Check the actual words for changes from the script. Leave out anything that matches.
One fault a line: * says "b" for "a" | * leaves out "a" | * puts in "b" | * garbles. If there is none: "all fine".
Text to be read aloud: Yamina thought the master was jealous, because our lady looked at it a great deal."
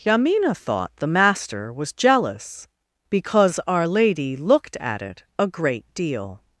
all fine